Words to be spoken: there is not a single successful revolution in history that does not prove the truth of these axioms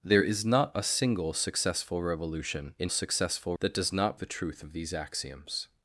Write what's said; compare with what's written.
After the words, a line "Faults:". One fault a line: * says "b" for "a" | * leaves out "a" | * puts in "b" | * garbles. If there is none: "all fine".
there is not a single successful revolution in successful that does not the truth of these axioms
Faults:
* says "successful" for "history"
* leaves out "prove"